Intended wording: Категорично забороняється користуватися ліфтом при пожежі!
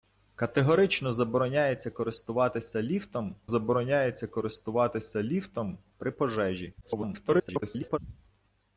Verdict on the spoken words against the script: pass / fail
fail